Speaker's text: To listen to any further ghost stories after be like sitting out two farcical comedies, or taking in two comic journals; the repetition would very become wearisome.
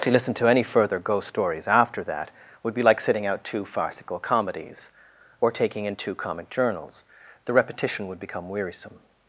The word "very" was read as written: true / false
false